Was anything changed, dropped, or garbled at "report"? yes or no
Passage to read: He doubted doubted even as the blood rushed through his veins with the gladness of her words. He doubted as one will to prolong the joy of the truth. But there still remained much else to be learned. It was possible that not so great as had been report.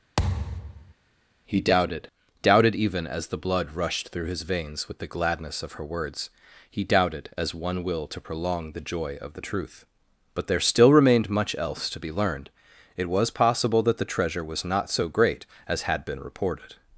yes